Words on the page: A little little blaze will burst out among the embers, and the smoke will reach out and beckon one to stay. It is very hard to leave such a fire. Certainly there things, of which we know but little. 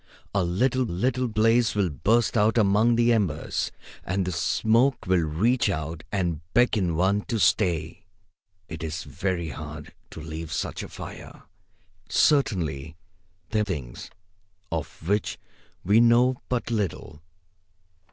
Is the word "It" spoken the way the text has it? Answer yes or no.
yes